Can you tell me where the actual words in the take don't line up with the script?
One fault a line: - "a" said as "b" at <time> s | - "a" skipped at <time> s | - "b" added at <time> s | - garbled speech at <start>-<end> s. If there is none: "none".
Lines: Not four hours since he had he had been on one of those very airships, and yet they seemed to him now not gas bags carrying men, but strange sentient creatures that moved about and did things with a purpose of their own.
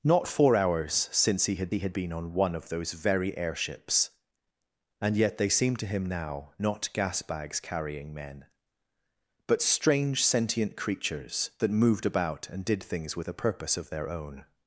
none